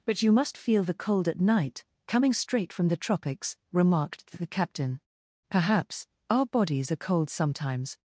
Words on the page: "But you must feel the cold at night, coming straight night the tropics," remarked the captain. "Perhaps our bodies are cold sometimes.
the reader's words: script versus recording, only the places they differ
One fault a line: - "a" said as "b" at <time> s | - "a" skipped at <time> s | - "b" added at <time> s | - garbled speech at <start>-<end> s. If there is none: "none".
- "night" said as "from" at 2.7 s